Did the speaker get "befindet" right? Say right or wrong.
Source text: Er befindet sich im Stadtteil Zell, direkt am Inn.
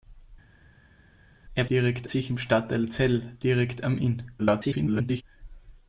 wrong